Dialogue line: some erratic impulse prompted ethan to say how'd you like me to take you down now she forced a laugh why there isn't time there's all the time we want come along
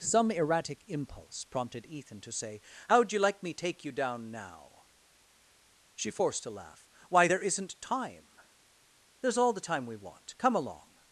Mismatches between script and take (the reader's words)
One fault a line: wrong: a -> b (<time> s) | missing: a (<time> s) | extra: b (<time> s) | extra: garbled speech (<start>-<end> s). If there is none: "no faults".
missing: to (3.5 s)